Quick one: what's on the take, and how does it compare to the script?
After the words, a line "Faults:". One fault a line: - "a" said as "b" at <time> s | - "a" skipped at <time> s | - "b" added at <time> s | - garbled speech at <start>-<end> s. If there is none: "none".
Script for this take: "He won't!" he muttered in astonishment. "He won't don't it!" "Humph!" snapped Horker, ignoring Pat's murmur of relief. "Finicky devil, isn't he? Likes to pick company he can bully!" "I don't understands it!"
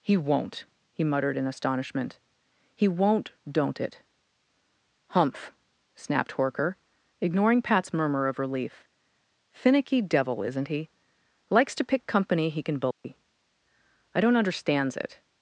"He won't!" he muttered in astonishment. "He won't don't it!" "Humph!" snapped Horker, ignoring Pat's murmur of relief. "Finicky devil, isn't he? Likes to pick company he can bully!" "I don't understands it!"
Faults:
none